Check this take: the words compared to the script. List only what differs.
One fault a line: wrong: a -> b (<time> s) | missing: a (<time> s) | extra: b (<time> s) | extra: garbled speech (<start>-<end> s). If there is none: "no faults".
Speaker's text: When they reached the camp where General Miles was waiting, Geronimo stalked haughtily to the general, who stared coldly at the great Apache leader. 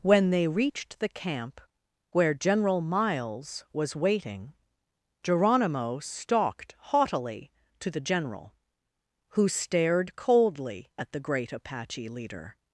no faults